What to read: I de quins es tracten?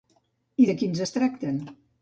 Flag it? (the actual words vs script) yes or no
no